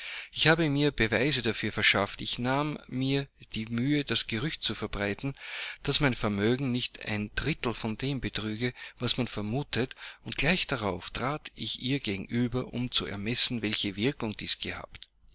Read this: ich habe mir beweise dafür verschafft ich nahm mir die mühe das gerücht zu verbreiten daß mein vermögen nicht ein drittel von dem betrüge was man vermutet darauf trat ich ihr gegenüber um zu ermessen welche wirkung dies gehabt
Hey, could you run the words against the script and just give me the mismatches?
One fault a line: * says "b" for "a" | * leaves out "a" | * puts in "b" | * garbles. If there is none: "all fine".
* puts in "und gleich"